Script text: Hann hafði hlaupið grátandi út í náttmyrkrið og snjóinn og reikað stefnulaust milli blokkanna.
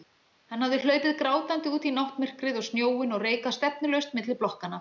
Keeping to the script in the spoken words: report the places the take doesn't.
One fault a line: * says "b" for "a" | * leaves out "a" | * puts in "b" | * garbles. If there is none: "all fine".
all fine